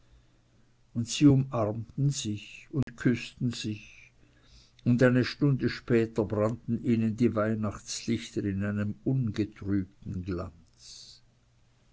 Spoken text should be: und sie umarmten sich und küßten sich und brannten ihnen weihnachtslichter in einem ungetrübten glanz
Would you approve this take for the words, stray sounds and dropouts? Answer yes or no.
no